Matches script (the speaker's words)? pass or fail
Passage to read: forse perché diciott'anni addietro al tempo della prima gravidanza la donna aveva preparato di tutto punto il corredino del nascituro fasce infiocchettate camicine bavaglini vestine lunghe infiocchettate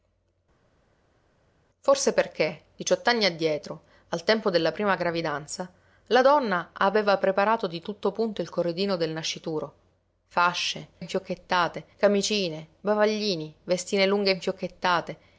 pass